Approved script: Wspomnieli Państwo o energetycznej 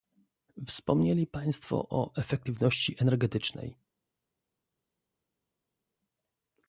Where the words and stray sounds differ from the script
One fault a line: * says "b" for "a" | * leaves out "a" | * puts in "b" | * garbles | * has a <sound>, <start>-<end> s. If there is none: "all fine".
* puts in "efektywności"